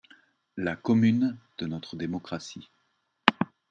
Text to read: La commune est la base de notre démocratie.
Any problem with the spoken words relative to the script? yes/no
yes